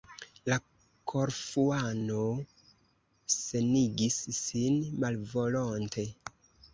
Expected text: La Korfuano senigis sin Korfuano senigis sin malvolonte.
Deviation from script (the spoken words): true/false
true